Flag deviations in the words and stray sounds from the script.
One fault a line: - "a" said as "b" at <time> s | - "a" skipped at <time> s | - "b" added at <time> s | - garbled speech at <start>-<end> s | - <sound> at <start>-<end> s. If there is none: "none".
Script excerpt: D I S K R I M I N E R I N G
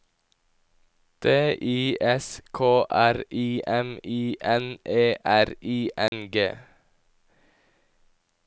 - dropout at 6.1-6.1 s